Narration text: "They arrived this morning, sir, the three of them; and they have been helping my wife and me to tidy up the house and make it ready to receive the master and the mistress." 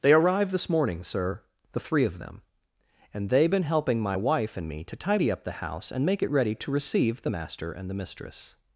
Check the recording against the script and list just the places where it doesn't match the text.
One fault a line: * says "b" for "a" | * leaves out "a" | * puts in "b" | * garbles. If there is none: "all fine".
* leaves out "have"